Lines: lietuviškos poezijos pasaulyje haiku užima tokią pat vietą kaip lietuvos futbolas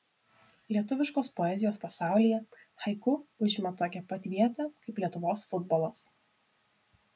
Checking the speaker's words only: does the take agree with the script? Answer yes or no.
yes